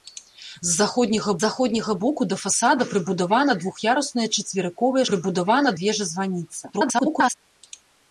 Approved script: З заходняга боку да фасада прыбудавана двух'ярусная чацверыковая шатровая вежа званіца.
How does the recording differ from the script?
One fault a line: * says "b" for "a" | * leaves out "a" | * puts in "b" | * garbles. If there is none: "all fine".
* puts in "заходняга"
* says "прыбудавана" for "шатровая"
* garbles